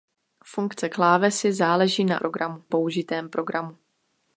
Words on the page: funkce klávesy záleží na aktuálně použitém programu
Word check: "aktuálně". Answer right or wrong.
wrong